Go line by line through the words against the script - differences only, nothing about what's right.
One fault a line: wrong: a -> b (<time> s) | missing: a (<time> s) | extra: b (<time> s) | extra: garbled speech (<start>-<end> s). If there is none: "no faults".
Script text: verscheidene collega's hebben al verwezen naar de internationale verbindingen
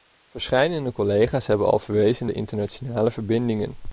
missing: naar (2.3 s)